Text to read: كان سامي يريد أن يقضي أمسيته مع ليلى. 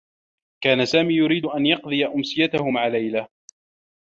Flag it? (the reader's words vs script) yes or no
no